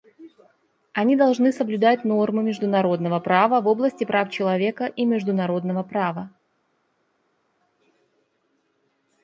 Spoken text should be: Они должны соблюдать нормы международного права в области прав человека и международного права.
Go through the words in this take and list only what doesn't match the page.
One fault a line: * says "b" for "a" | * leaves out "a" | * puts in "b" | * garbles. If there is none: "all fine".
all fine